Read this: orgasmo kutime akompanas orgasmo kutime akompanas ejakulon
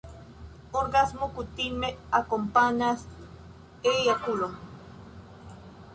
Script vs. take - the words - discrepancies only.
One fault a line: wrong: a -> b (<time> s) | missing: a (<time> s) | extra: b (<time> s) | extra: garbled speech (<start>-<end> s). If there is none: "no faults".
missing: orgasmo kutime akompanas (3.1 s)